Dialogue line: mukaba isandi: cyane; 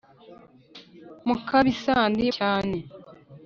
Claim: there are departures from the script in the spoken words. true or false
false